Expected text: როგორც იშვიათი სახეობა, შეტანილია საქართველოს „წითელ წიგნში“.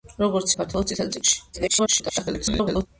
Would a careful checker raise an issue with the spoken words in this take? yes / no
yes